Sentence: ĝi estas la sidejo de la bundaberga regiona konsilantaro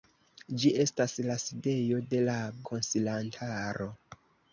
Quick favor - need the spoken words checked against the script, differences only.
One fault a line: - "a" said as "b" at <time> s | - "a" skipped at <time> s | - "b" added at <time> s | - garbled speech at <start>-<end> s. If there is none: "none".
- "bundaberga regiona" skipped at 2.4 s